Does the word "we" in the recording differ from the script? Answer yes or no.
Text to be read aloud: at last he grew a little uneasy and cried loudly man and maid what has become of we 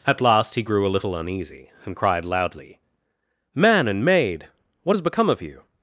yes